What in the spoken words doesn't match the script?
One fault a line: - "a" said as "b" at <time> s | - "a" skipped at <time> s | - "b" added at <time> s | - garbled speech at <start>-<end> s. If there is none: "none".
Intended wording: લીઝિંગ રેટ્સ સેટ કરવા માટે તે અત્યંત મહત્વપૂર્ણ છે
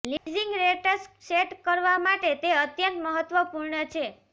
none